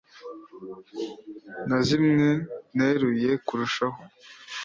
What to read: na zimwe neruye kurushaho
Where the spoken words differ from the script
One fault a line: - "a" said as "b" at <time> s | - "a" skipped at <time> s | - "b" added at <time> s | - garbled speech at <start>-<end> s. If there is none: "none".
none